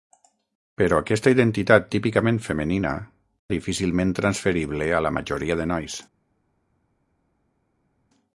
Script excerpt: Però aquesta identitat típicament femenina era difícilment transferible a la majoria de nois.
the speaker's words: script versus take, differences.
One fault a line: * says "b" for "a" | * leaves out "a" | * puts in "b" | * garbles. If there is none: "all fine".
* leaves out "era"